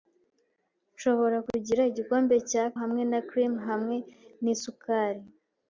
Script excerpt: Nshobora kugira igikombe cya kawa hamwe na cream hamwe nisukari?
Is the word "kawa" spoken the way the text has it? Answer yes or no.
no